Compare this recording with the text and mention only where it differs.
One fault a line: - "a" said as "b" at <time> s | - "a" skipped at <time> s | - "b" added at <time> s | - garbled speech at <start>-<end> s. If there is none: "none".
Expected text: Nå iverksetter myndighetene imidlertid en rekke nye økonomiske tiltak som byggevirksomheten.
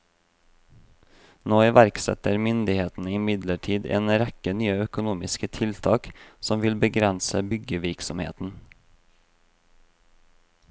- "vil begrense" added at 6.6 s